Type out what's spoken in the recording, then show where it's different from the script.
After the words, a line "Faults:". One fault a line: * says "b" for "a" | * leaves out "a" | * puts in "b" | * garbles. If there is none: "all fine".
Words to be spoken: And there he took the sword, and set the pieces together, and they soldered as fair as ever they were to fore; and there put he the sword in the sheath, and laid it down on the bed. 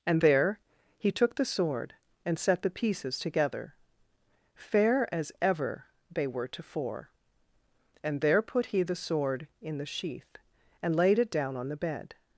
And there he took the sword, and set the pieces together, fair as ever they were to fore; and there put he the sword in the sheath, and laid it down on the bed.
Faults:
* leaves out "and they soldered as"